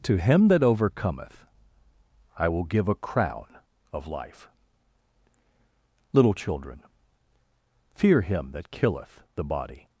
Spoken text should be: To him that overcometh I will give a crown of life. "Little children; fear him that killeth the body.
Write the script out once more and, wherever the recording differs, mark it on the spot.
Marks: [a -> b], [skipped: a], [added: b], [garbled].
To him that overcometh I will give a crown of life. "Little children; fear him that killeth the body.